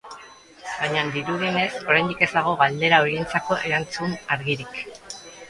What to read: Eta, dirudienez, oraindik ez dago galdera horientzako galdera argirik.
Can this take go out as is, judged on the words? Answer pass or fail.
fail